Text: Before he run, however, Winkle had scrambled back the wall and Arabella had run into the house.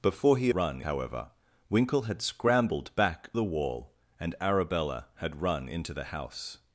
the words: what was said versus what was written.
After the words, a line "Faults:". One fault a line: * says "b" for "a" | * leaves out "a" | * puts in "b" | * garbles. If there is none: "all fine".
Before he run, however, Winkle had scrambled back the wall and Arabella had run into the house.
Faults:
all fine